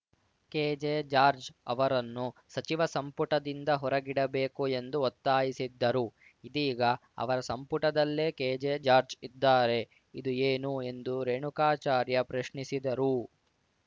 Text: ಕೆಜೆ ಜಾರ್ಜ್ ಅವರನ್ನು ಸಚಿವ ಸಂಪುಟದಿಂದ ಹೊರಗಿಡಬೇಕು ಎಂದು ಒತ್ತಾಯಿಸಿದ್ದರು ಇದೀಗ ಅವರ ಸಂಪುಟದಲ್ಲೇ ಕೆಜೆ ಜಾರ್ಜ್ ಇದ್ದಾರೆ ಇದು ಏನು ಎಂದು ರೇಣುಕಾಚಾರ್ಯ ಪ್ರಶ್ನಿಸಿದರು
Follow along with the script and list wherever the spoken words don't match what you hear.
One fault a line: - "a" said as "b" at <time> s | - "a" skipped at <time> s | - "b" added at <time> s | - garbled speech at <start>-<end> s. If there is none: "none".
none